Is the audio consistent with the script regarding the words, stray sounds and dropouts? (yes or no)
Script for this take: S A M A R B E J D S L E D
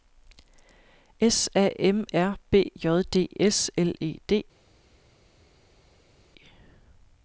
no